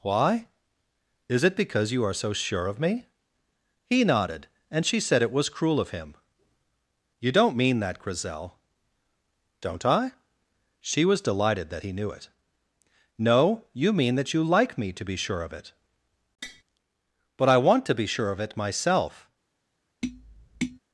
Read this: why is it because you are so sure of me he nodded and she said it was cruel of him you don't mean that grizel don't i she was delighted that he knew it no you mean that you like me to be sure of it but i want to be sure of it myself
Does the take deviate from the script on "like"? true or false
false